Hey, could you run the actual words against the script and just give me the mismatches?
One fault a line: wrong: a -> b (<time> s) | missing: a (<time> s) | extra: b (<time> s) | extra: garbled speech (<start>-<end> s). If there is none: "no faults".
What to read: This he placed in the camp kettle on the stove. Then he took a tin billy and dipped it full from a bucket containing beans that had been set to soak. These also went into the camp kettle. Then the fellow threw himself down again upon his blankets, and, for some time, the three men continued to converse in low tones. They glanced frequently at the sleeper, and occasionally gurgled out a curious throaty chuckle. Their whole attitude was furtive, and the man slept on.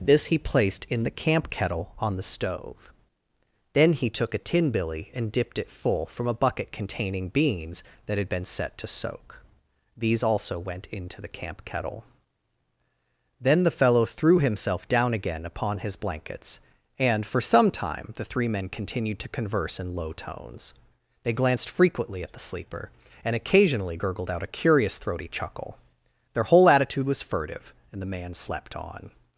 no faults